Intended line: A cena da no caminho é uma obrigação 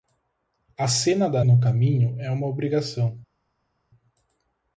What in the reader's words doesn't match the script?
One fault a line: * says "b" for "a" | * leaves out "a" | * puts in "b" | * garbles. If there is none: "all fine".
all fine